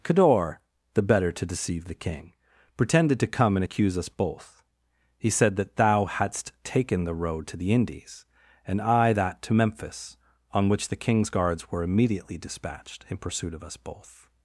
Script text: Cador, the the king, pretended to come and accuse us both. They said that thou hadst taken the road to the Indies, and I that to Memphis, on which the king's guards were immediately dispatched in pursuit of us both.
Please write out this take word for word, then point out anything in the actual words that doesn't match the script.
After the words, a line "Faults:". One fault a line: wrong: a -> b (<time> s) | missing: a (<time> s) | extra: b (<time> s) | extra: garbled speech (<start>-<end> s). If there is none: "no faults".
Cador, the better to deceive the king, pretended to come and accuse us both. He said that thou hadst taken the road to the Indies, and I that to Memphis, on which the king's guards were immediately dispatched in pursuit of us both.
Faults:
extra: better to deceive (1.0 s)
wrong: They -> He (5.2 s)